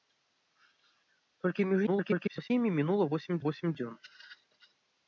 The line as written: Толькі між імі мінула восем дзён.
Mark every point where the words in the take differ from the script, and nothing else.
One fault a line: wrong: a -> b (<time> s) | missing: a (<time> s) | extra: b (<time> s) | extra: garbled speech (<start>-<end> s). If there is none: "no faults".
extra: garbled speech (1.9-2.5 s)
extra: восем (3.5 s)